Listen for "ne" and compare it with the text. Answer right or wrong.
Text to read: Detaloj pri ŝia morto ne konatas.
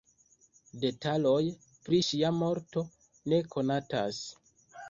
right